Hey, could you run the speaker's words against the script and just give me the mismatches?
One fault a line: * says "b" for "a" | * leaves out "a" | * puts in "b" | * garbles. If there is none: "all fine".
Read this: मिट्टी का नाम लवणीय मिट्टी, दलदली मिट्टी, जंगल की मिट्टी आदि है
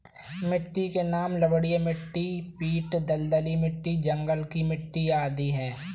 * says "के" for "का"
* puts in "पीट"